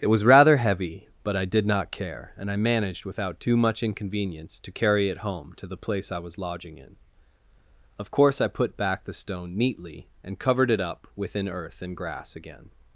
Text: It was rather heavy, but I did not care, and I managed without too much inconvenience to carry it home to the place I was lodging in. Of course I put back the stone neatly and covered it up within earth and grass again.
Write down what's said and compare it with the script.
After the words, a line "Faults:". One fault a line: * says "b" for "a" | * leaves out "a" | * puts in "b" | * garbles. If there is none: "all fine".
It was rather heavy, but I did not care, and I managed without too much inconvenience to carry it home to the place I was lodging in. Of course I put back the stone neatly and covered it up within earth and grass again.
Faults:
all fine